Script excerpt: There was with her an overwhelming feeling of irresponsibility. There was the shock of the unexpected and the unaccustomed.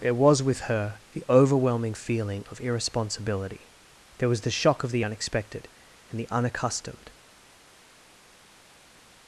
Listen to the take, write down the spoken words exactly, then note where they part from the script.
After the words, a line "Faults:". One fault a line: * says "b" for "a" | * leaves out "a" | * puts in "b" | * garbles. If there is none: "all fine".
There was with her the overwhelming feeling of irresponsibility. There was the shock of the unexpected and the unaccustomed.
Faults:
* says "the" for "an"